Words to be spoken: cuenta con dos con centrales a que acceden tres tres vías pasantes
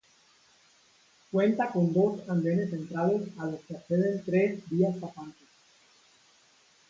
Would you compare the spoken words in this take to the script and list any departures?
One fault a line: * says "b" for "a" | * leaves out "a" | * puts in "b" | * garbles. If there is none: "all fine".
* says "andenes" for "con"
* puts in "los"
* leaves out "tres"